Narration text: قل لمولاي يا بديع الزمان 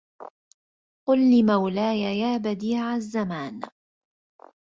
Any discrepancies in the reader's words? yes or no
no